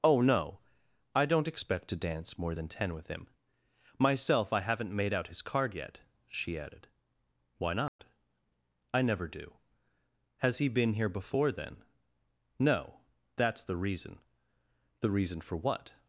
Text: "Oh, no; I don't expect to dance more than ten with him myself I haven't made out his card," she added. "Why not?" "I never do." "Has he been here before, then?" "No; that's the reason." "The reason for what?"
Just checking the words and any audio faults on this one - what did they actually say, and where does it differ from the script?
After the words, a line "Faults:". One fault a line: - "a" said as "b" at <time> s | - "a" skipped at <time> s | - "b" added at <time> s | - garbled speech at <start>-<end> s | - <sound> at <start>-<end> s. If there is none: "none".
"Oh, no; I don't expect to dance more than ten with him myself I haven't made out his card yet," she added. "Why not?" "I never do." "Has he been here before, then?" "No; that's the reason." "The reason for what?"
Faults:
- "yet" added at 5.7 s
- dropout at 7.9-8.0 s